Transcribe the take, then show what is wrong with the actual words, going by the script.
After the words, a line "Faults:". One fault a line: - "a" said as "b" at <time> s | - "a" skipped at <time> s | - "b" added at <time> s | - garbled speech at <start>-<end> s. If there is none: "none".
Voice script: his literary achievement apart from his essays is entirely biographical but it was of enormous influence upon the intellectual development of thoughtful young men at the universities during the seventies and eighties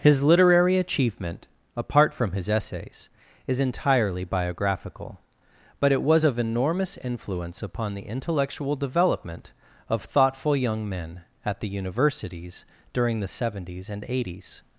his literary achievement apart from his essays is entirely biographical but it was of enormous influence upon the intellectual development of thoughtful young men at the universities during the seventies and eighties
Faults:
none